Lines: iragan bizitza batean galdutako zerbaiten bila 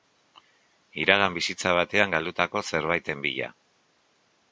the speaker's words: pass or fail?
pass